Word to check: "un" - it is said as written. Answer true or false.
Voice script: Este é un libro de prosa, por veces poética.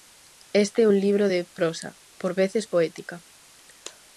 true